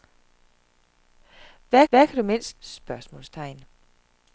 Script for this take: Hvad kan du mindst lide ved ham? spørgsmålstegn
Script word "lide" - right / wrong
wrong